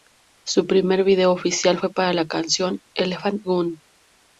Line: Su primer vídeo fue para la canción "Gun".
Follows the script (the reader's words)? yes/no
no